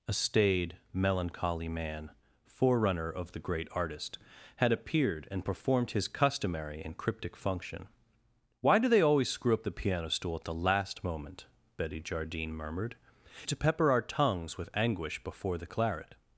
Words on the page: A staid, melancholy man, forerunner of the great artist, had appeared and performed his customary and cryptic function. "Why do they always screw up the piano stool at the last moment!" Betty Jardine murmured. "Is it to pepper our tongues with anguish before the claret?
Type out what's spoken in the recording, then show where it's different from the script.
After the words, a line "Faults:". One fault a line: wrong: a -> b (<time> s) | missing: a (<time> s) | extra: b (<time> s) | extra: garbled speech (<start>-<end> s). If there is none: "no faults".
A staid, melancholy man, forerunner of the great artist, had appeared and performed his customary and cryptic function. "Why do they always screw up the piano stool at the last moment!" Betty Jardine murmured. "It to pepper our tongues with anguish before the claret?
Faults:
missing: Is (13.0 s)